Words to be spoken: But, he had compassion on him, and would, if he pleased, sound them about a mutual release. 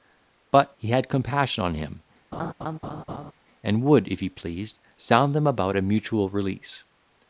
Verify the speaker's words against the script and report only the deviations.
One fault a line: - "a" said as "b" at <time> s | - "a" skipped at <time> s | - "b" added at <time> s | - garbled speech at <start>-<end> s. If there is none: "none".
none